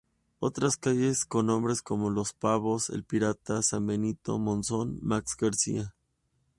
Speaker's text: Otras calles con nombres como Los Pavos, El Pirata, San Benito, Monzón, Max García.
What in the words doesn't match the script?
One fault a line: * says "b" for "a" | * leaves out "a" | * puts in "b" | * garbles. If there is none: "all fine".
all fine